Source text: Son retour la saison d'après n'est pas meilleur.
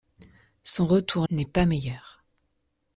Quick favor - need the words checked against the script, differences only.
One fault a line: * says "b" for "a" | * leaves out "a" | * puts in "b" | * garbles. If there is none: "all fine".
* leaves out "la saison d'après"